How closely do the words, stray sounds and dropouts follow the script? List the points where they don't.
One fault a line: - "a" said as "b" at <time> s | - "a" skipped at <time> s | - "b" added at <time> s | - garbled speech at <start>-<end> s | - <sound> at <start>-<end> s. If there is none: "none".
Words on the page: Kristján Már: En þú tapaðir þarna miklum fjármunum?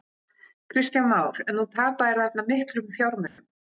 - dropout at 3.3-3.4 s